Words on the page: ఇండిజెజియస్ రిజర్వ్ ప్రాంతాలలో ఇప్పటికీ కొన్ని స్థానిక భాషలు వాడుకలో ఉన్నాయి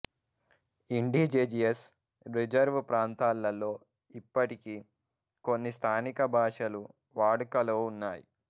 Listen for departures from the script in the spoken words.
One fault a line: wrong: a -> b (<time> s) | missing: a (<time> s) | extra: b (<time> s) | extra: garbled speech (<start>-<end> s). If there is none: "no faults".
no faults